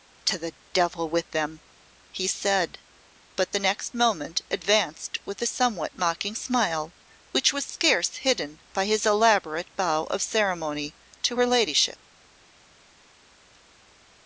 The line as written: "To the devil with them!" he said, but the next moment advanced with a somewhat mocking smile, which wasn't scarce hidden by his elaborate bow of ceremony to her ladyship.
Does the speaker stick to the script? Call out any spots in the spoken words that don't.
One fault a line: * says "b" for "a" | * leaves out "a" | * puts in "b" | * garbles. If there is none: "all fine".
* says "was" for "wasn't"